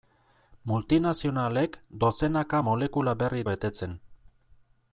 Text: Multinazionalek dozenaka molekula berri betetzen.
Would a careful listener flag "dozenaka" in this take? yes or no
no